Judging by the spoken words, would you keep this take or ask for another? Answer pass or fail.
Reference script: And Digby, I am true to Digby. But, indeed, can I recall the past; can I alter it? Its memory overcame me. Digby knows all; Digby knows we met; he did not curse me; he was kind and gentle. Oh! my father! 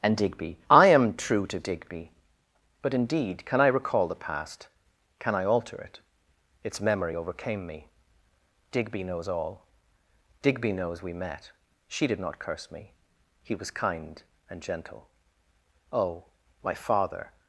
fail